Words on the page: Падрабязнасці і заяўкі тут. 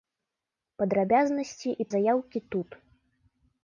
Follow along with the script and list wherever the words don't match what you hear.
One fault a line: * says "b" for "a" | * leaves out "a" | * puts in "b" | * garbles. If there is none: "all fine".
all fine